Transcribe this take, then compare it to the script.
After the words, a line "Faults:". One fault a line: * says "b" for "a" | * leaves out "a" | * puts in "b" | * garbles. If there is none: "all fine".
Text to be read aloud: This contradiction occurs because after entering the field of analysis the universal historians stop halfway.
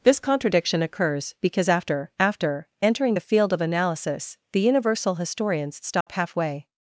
This contradiction occurs because after after entering the field of analysis the universal historians stop halfway.
Faults:
* puts in "after"